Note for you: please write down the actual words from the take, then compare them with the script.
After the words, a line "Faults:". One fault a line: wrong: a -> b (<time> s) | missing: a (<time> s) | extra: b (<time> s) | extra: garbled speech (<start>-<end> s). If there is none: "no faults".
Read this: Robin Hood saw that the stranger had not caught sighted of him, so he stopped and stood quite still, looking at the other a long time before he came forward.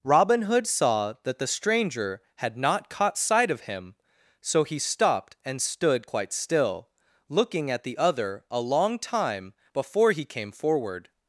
Robin Hood saw that the stranger had not caught sight of him, so he stopped and stood quite still, looking at the other a long time before he came forward.
Faults:
wrong: sighted -> sight (3.2 s)